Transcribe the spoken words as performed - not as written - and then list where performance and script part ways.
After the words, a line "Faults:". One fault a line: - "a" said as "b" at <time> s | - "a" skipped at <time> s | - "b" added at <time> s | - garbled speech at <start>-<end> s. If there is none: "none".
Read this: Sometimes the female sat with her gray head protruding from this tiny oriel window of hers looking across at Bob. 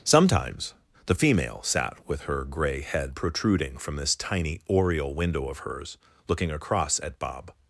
Sometimes the female sat with her gray head protruding from this tiny oriel window of hers looking across at Bob.
Faults:
none